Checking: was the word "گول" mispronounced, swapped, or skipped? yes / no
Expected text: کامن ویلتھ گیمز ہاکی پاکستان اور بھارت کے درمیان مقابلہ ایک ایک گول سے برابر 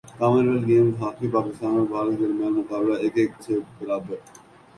yes